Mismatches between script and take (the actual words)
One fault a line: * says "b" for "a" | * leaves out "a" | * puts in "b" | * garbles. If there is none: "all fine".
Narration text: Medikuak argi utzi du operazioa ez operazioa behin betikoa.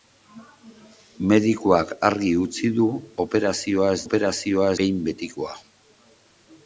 all fine